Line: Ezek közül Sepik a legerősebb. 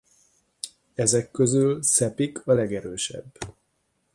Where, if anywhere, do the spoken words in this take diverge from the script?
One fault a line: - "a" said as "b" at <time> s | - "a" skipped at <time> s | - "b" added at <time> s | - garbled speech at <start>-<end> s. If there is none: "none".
none